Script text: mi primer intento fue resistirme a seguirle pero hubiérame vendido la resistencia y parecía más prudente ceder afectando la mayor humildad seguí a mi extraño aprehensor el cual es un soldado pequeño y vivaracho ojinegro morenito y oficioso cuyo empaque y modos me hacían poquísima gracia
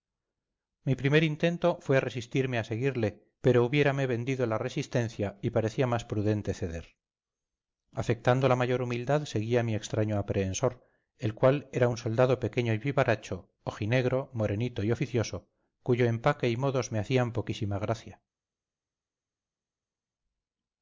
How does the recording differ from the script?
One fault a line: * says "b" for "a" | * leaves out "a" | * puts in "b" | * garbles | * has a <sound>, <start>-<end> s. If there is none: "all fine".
* says "era" for "es"